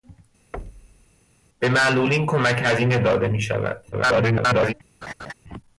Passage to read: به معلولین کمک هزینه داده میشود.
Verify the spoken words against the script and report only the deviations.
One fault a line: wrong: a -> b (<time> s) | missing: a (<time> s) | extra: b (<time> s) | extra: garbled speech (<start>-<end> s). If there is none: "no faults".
extra: garbled speech (3.9-4.7 s)